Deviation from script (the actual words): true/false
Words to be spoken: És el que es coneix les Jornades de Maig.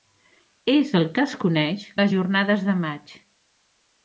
false